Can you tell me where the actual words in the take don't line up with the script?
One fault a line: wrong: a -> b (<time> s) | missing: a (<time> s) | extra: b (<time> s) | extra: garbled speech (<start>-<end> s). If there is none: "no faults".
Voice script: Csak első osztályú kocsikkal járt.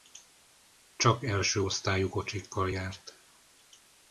no faults